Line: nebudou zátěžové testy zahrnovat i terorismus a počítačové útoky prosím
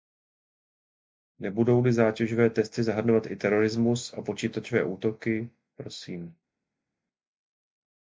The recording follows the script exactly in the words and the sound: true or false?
false